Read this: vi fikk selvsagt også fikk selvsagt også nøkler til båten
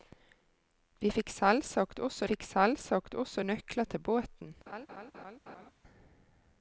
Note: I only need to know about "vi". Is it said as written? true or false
true